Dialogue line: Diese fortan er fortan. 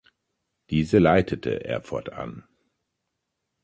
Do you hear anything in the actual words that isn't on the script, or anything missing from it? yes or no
yes